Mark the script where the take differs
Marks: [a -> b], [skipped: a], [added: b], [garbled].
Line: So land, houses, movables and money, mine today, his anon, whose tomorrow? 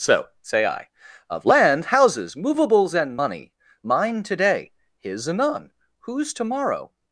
So [added: say I of] land, houses, movables and money, mine today, his anon, whose tomorrow?